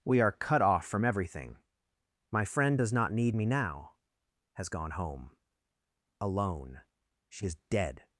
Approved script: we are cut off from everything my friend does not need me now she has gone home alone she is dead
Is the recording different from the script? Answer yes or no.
yes